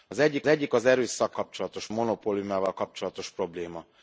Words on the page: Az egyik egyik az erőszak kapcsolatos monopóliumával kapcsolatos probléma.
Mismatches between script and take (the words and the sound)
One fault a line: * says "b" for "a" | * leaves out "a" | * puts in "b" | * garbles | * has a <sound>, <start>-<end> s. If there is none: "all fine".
all fine